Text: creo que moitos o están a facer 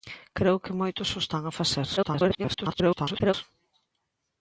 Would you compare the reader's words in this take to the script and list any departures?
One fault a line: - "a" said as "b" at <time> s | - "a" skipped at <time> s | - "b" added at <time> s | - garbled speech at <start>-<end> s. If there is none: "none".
- garbled speech at 2.0-3.3 s